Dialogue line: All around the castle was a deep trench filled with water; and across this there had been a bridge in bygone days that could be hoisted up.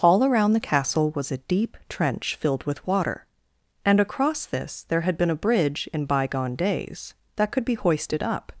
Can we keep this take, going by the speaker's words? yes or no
yes